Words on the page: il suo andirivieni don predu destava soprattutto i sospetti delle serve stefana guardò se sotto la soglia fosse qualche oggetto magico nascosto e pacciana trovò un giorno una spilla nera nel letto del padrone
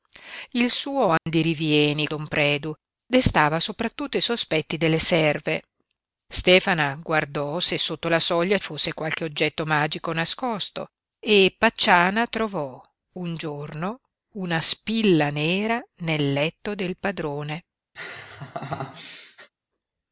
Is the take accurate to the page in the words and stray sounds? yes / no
no